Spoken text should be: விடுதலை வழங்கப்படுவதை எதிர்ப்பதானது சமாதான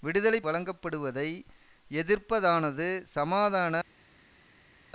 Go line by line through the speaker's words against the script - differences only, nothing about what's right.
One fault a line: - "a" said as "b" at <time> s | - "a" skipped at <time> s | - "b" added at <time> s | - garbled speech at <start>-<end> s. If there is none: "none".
none